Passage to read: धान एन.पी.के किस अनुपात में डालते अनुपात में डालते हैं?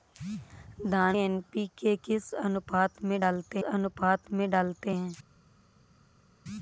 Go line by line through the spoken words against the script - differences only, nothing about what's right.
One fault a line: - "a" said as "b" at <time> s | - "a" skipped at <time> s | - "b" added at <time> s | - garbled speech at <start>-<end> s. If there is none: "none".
none